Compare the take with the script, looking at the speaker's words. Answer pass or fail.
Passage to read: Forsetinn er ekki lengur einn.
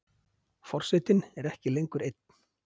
pass